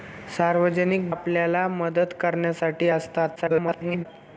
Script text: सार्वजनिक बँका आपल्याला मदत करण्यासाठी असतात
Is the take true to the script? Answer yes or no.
no